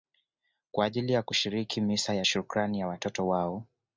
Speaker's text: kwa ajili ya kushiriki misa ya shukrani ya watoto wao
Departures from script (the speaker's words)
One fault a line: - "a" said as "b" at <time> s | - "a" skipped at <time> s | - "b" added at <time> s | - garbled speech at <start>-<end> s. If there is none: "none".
none